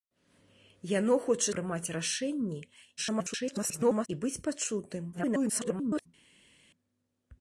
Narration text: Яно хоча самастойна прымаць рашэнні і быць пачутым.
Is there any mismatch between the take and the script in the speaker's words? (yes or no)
yes